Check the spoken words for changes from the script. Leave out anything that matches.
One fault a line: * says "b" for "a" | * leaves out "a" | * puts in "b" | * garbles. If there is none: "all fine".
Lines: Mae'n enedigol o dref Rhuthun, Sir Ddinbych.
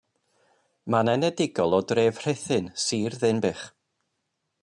all fine